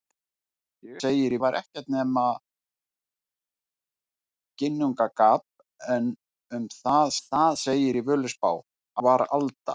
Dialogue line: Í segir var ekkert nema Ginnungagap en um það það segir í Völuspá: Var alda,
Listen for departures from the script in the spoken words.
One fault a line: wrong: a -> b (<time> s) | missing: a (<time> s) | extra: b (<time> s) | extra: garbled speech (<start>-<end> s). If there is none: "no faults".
no faults